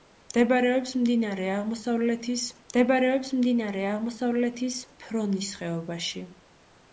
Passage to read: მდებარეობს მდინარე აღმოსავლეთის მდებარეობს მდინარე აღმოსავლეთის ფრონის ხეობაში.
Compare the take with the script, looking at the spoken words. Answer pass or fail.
pass